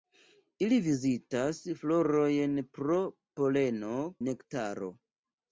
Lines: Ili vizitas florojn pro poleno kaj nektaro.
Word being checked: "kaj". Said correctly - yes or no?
no